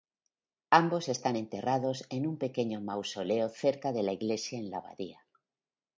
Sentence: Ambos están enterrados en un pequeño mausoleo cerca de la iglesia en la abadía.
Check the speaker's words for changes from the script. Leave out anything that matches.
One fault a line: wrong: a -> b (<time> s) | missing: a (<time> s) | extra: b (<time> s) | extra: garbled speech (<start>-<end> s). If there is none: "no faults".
no faults